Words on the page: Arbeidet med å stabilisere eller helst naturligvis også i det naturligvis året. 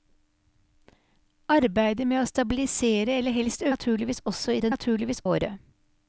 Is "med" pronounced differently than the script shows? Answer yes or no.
no